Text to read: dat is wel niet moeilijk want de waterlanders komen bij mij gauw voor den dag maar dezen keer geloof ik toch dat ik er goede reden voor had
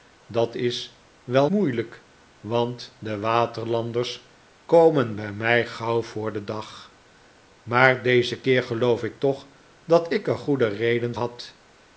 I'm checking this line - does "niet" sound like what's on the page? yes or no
no